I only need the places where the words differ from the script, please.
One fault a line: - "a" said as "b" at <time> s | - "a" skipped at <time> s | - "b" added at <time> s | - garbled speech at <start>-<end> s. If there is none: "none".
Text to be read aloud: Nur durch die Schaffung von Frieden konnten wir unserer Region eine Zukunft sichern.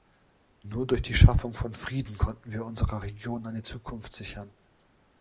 none